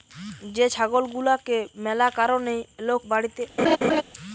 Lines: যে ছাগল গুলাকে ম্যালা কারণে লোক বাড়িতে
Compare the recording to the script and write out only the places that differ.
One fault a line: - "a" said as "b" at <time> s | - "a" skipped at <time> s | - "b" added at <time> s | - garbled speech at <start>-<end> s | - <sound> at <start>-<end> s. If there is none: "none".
- laugh at 3.6-4.0 s